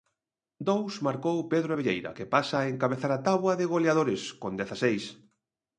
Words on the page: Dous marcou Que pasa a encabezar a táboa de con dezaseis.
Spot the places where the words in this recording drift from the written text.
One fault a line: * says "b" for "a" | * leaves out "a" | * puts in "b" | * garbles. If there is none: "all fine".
* puts in "Pedro Abelleira"
* puts in "goleadores"